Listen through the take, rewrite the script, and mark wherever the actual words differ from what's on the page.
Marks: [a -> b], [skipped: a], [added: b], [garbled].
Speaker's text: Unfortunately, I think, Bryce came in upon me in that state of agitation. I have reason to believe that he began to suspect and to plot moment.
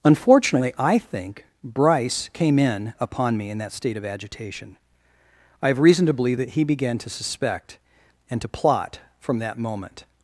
Unfortunately, I think, Bryce came in upon me in that state of agitation. I have reason to believe that he began to suspect and to plot [added: from that] moment.